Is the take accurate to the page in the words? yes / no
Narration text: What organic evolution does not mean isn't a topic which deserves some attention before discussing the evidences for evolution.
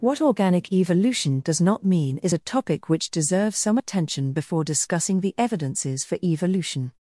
no